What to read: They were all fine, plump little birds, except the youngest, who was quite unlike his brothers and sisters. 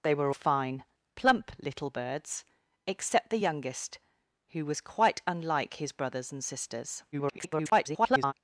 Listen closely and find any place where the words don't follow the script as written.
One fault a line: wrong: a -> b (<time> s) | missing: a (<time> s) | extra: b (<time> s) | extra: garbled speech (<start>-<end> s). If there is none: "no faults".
missing: all (0.3 s)
extra: garbled speech (7.1-8.3 s)